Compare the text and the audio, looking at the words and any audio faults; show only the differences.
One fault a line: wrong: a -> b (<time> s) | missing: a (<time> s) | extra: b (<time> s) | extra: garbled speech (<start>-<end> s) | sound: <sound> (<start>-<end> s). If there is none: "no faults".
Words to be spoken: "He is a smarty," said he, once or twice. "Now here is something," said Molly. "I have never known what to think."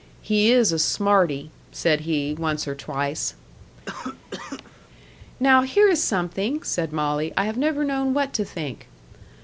sound: cough (3.9-4.9 s)